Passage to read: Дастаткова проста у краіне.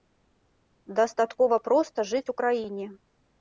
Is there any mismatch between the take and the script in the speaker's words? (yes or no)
yes